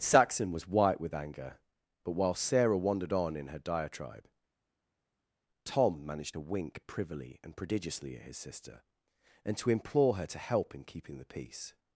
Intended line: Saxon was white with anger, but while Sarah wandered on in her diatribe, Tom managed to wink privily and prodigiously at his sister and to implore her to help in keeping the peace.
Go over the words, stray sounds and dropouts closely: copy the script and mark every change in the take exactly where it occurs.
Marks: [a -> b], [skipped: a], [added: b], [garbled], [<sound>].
Saxon was white with anger, but while Sarah wandered on in her diatribe, Tom managed to wink privily and prodigiously at his sister and to implore her to help in keeping the peace.